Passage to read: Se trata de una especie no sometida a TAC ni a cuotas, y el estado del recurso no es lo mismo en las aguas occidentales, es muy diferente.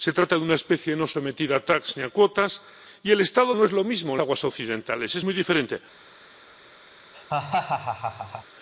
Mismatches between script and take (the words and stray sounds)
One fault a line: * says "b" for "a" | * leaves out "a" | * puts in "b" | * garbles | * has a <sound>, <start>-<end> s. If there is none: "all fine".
* leaves out "del recurso"
* leaves out "las"
* has a laugh, 7.1-8.4 s